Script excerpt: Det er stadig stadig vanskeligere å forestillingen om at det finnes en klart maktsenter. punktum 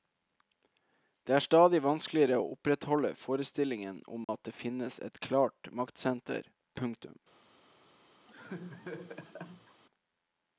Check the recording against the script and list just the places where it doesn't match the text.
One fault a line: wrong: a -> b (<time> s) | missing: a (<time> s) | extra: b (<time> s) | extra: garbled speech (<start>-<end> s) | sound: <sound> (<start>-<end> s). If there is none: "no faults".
missing: stadig (1.8 s)
extra: opprettholde (2.5 s)
sound: dropout (4.2-4.3 s)
wrong: en -> et (5.1 s)
sound: laugh (8.3-9.8 s)